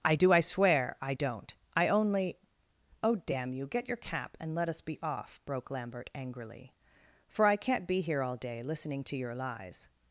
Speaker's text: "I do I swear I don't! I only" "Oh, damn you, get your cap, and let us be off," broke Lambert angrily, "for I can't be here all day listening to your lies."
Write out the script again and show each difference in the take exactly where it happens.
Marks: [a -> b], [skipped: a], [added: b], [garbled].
"I do I swear I don't! I only" "Oh, damn you, get your cap, and let us be off," broke Lambert angrily, "for I can't be here all day listening to your lies."